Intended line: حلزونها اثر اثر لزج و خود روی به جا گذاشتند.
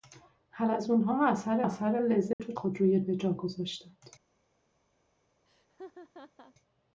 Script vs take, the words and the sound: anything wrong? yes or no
yes